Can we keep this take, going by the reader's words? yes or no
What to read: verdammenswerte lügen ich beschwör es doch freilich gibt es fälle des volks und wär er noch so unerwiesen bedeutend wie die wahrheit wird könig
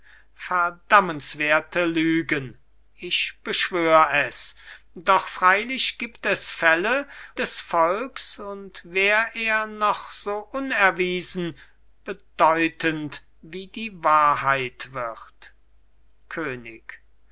yes